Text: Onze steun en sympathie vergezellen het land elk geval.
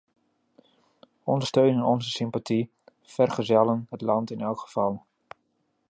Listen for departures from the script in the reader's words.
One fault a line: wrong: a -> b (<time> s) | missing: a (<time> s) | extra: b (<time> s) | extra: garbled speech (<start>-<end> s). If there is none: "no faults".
extra: onze (1.8 s)
extra: in (4.3 s)